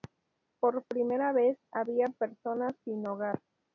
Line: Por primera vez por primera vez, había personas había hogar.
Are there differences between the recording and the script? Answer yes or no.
yes